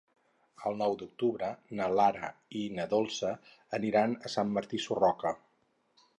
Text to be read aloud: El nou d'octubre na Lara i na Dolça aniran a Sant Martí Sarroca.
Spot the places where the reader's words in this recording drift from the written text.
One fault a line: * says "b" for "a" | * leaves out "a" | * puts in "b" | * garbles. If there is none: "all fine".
all fine